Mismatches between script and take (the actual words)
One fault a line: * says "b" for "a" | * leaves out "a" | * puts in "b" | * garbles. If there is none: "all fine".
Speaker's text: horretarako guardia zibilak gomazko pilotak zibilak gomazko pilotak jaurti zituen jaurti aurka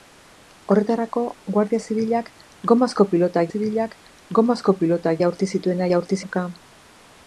all fine